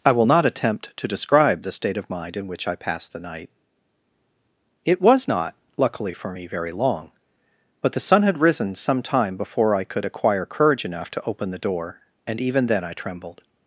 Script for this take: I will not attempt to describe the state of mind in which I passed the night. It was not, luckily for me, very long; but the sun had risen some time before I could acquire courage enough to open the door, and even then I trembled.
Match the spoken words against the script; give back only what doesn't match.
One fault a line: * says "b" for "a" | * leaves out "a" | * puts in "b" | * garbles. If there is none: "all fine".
all fine